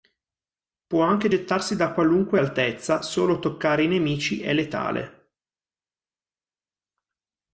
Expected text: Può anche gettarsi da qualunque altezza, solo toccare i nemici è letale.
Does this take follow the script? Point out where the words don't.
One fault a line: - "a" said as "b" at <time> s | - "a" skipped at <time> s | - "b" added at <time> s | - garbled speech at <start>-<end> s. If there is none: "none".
none